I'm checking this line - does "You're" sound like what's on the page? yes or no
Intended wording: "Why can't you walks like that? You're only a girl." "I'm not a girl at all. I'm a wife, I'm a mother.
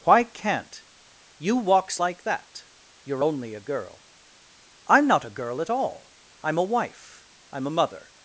yes